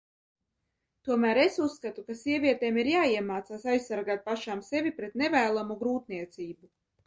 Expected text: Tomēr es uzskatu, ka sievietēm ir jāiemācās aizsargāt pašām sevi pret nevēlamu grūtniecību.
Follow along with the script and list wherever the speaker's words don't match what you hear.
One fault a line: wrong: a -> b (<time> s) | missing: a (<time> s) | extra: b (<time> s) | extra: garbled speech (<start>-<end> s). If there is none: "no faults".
no faults